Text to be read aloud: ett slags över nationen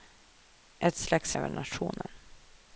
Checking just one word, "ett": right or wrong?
right